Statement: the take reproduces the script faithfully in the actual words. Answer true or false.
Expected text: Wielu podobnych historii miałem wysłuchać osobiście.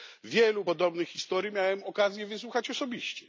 false